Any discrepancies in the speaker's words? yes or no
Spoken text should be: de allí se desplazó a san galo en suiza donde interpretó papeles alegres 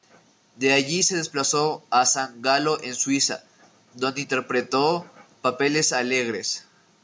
no